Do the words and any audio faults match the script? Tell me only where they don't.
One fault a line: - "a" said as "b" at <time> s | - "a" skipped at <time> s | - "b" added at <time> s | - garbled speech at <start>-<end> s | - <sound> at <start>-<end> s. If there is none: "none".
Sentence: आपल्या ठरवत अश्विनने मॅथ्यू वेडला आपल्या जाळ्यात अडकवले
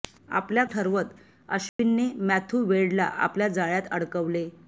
- dropout at 1.7-1.8 s